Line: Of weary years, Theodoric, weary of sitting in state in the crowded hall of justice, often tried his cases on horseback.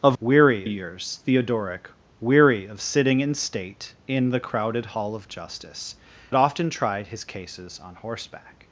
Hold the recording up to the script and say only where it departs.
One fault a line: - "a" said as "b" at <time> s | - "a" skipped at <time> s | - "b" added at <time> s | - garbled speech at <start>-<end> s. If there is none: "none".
none